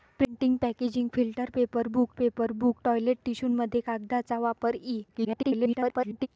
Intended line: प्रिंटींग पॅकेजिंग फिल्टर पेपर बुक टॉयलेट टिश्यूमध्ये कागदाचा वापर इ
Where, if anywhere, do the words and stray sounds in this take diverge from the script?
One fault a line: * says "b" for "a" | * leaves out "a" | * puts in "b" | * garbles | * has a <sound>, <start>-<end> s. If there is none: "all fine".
* puts in "पेपर बुक"
* garbles